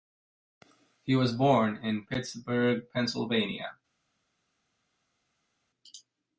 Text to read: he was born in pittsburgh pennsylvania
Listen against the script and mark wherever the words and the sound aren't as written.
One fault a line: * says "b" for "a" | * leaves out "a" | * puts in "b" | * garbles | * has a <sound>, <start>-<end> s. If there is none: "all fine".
all fine